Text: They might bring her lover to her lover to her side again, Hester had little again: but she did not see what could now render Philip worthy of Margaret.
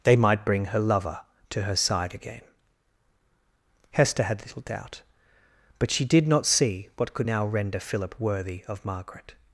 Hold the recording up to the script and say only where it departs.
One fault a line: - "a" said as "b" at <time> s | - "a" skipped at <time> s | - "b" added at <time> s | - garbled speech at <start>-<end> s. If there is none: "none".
- "lover to her" skipped at 1.8 s
- "again" said as "doubt" at 4.6 s